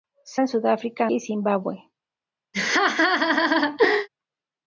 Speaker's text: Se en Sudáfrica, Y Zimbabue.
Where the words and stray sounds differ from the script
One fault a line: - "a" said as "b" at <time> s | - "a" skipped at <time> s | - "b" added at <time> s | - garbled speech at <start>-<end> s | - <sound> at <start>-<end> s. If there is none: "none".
- laugh at 2.5-4.1 s